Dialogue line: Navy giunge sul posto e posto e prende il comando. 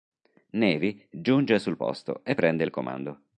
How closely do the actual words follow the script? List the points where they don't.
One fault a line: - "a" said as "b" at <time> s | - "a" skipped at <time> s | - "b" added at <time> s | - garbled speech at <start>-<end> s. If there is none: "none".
- "posto e" skipped at 2.4 s